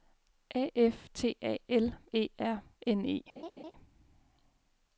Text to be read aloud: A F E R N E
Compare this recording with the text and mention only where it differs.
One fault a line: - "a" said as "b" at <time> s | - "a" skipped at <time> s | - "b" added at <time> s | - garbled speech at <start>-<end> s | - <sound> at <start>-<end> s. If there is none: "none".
- "T A L" added at 1.1 s
- laugh at 3.4-3.7 s